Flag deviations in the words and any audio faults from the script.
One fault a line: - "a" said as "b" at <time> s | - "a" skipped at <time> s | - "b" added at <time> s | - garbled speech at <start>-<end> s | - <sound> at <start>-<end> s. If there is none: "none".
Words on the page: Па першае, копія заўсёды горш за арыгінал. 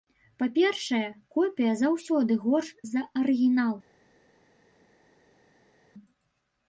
none